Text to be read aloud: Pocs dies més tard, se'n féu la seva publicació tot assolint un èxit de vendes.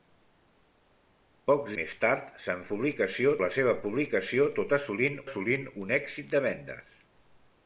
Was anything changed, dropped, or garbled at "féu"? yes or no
yes